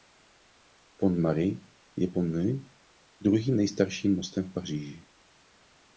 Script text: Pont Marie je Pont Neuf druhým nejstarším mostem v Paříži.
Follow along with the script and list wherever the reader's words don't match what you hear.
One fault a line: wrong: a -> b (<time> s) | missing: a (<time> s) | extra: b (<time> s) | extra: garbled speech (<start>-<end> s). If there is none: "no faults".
no faults